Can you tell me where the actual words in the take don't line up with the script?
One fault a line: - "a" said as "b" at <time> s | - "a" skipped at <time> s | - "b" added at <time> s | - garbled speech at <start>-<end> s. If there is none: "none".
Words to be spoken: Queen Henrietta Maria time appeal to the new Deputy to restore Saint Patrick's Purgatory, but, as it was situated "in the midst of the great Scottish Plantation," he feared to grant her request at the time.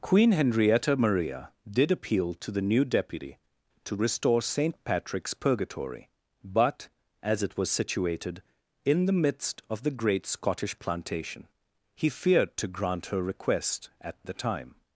- "time" said as "did" at 1.7 s